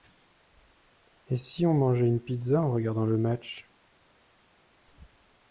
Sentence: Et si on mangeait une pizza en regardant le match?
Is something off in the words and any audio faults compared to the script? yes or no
no